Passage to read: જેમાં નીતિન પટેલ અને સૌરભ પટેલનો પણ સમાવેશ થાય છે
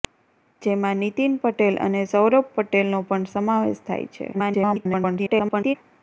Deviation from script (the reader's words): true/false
true